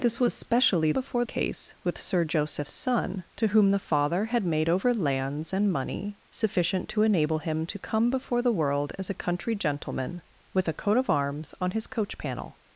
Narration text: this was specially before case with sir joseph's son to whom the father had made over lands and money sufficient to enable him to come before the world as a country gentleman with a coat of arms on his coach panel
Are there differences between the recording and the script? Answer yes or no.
no